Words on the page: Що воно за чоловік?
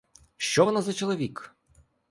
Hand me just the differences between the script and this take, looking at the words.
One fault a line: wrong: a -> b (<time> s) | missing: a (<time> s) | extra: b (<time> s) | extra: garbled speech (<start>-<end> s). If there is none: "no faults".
no faults